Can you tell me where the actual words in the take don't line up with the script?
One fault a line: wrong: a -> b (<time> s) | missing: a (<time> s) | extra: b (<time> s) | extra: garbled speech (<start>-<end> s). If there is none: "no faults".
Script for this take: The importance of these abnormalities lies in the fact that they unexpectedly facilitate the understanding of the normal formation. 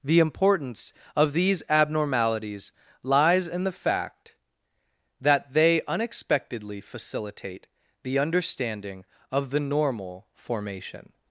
no faults